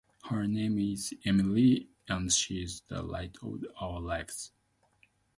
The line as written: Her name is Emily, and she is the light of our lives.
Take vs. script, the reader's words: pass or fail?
pass